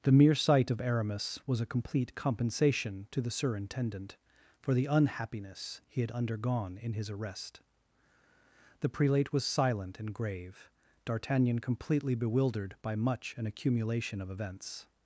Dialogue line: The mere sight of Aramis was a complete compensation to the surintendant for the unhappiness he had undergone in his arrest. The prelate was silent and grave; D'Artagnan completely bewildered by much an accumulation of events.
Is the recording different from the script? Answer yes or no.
no